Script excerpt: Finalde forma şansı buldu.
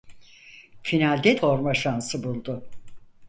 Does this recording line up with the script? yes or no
yes